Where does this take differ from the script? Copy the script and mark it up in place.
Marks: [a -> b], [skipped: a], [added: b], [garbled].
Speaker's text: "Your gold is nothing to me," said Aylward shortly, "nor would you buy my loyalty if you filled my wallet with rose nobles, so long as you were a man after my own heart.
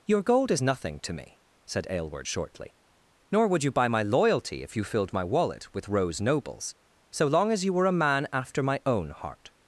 "Your gold is nothing to me," said Aylward shortly, "nor would you buy my loyalty if you filled my wallet with rose nobles, so long as you were a man after my own heart.